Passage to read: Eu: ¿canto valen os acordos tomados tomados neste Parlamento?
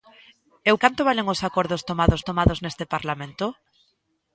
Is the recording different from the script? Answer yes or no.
no